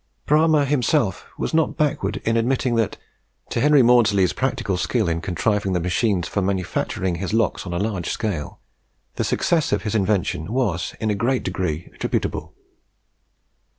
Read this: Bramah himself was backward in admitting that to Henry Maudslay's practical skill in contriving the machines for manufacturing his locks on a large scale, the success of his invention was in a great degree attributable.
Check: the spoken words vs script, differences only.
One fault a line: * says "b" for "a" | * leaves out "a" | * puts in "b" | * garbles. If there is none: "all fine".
* puts in "not"